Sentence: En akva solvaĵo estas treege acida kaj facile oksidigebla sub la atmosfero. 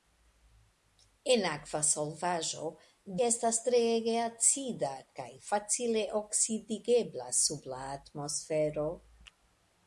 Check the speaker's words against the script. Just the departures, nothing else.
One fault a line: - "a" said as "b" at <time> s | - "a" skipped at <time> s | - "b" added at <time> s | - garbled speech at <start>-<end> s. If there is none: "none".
none